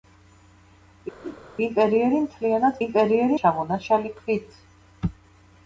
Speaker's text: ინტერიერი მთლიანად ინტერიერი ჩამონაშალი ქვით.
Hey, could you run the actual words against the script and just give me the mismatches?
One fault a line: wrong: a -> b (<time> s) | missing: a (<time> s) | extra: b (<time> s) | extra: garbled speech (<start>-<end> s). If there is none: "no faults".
no faults